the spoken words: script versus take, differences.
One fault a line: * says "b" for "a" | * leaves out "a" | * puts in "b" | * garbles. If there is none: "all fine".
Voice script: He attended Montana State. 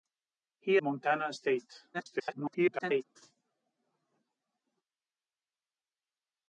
* leaves out "attended"
* garbles